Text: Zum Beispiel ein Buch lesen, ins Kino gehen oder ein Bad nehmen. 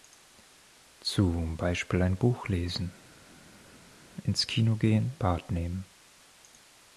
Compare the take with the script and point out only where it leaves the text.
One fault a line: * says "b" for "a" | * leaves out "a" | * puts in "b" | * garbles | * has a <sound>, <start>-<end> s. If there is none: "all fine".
* leaves out "oder ein"